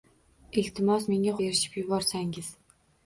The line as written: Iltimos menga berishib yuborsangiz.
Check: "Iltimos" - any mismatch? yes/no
no